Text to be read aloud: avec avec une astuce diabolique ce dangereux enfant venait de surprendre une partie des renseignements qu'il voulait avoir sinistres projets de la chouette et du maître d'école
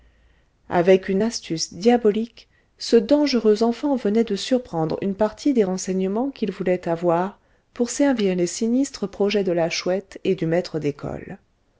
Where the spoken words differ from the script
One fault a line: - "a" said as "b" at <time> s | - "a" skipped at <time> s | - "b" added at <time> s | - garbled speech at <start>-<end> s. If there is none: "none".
- "avec" skipped at 1.1 s
- "pour servir les" added at 7.7 s